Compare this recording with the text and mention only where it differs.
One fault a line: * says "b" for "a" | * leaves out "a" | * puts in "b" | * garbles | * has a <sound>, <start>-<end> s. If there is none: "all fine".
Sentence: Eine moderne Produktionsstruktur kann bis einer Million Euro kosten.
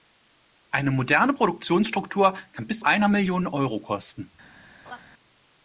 * has a laugh, 4.9-5.0 s